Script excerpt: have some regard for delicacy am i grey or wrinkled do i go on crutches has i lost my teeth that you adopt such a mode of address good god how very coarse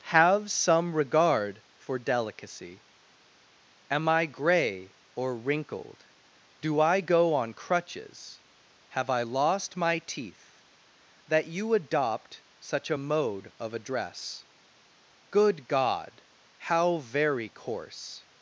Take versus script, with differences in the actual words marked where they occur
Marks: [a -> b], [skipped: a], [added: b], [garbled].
have some regard for delicacy am i grey or wrinkled do i go on crutches [has -> have] i lost my teeth that you adopt such a mode of address good god how very coarse